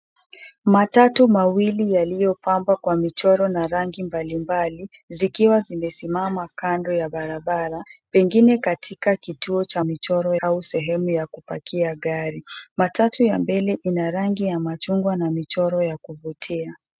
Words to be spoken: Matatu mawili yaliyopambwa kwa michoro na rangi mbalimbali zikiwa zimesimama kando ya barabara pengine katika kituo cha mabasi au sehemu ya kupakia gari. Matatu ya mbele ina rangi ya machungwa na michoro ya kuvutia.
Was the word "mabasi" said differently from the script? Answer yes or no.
yes